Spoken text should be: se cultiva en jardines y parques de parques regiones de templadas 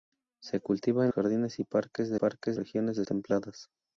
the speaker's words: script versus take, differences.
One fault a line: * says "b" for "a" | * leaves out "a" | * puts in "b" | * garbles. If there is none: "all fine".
all fine